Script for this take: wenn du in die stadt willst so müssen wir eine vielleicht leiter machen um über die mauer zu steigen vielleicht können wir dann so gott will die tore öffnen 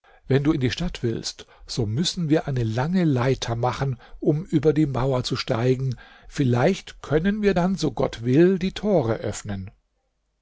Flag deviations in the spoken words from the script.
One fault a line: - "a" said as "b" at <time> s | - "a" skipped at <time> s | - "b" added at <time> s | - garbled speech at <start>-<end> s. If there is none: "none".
- "vielleicht" said as "lange" at 2.6 s